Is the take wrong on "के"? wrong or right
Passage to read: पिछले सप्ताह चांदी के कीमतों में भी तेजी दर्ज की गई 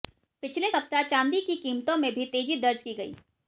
wrong